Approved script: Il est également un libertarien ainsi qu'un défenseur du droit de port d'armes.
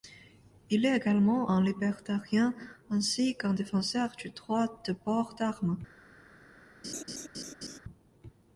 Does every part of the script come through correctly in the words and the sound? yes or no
no